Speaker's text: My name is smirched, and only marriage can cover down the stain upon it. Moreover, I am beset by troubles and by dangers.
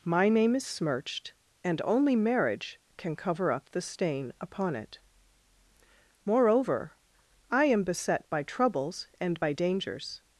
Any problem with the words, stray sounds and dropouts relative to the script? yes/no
yes